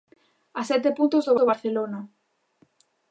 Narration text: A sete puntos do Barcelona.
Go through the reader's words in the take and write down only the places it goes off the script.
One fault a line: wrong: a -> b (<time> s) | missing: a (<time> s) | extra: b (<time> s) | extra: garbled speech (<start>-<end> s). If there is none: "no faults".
extra: do (1.4 s)